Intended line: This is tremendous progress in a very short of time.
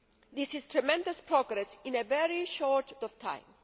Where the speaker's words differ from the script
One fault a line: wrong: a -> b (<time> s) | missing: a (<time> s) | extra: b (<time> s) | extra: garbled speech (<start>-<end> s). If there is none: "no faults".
no faults